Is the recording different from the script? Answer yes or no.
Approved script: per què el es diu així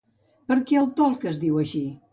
yes